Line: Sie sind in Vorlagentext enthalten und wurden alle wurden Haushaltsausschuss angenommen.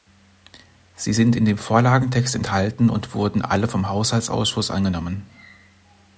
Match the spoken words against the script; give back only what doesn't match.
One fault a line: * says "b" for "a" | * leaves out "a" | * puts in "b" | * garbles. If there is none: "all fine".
* puts in "dem"
* says "vom" for "wurden"